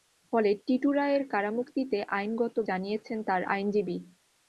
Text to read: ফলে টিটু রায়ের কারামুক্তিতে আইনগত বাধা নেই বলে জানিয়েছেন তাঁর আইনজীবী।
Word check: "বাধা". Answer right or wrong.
wrong